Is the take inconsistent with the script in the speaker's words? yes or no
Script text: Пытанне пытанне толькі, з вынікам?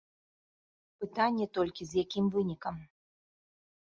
yes